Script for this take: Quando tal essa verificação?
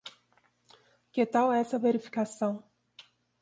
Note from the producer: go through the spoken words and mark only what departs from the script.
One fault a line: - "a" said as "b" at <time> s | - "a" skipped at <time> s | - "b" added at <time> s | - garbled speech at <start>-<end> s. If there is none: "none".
- "Quando" said as "Que" at 1.1 s